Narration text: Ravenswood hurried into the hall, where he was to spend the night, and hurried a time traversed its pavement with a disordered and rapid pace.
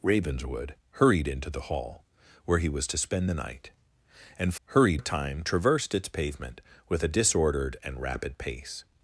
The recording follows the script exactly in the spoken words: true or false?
true